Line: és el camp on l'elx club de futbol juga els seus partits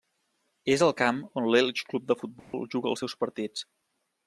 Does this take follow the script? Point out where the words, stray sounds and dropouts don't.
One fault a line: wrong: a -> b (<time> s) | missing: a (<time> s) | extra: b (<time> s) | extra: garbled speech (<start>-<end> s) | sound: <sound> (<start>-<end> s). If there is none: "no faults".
sound: dropout (2.4-2.5 s)